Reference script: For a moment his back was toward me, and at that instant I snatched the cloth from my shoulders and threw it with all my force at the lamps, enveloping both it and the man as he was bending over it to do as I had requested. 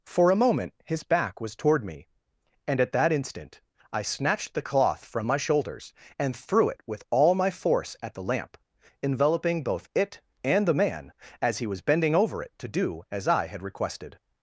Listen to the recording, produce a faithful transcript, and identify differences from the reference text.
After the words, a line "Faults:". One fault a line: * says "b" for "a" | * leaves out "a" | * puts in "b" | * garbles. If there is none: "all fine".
For a moment his back was toward me, and at that instant I snatched the cloth from my shoulders and threw it with all my force at the lamp, enveloping both it and the man as he was bending over it to do as I had requested.
Faults:
* says "lamp" for "lamps"